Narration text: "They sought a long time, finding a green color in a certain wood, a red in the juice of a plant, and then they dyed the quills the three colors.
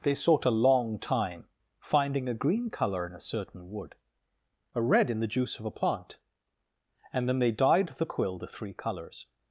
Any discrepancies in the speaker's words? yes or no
yes